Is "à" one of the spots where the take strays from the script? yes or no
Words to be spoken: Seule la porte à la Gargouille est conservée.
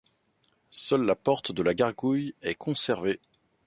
yes